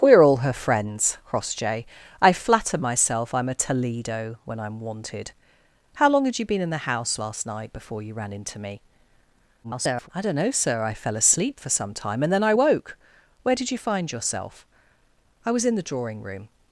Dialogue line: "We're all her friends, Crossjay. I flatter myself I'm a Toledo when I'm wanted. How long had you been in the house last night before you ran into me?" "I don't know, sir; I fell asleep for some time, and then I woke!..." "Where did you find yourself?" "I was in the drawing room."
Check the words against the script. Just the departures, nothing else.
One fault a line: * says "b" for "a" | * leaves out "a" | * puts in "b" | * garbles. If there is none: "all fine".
* garbles